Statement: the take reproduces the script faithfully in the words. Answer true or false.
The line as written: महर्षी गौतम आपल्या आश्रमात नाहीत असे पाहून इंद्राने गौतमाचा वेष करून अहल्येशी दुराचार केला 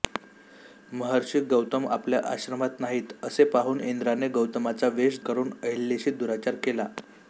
true